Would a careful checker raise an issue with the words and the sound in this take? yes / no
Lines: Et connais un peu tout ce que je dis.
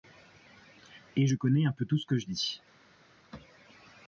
yes